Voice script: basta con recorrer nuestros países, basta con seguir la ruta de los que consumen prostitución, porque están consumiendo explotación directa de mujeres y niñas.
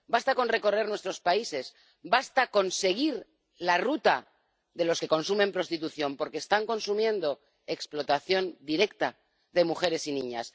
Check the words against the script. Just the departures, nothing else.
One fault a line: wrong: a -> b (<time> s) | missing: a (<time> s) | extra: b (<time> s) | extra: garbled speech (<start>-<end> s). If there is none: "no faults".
no faults